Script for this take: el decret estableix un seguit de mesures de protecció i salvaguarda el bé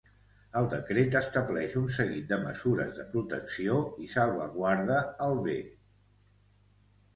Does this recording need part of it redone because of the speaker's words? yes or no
no